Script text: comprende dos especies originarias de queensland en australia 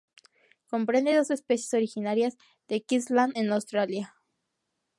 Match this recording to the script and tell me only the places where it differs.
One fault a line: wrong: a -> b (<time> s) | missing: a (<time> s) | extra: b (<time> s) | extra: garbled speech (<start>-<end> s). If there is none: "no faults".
no faults